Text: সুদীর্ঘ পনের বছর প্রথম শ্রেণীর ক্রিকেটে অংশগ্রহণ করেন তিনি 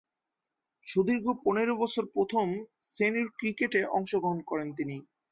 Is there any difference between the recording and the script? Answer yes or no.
no